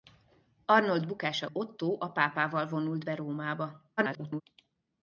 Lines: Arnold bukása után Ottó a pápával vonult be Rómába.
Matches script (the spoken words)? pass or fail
fail